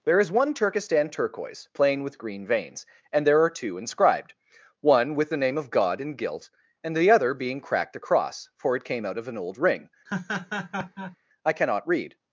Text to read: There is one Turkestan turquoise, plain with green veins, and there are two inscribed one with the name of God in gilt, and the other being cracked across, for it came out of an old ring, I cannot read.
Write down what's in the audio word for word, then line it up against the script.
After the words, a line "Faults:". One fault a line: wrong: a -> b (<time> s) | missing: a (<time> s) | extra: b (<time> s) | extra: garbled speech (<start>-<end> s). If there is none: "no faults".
There is one Turkestan turquoise, plain with green veins, and there are two inscribed one with the name of God in gilt, and the other being cracked across, for it came out of an old ring, I cannot read.
Faults:
no faults